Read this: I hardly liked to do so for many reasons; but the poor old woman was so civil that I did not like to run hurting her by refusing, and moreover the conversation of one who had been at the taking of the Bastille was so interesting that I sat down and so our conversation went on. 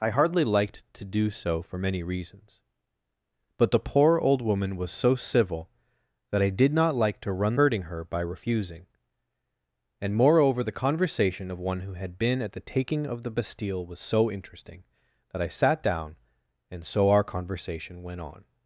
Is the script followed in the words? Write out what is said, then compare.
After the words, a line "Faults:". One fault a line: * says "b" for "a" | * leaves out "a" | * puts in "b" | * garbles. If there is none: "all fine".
I hardly liked to do so for many reasons; but the poor old woman was so civil that I did not like to run hurting her by refusing, and moreover the conversation of one who had been at the taking of the Bastille was so interesting that I sat down and so our conversation went on.
Faults:
all fine